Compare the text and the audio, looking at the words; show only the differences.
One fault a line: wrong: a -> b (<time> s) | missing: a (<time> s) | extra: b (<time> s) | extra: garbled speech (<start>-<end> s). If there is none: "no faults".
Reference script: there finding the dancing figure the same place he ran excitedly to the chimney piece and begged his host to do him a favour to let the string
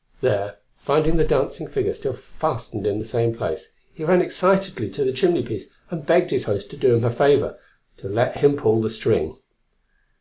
extra: still fastened in (1.9 s)
extra: him pull (8.4 s)